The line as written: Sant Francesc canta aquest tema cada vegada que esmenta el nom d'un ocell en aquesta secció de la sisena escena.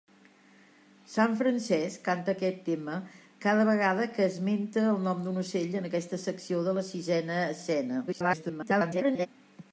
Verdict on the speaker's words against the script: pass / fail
fail